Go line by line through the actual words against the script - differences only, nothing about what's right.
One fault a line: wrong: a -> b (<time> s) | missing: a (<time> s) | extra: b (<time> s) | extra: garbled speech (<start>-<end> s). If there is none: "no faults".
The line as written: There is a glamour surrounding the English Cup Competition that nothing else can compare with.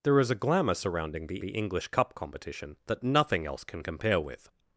extra: the (1.4 s)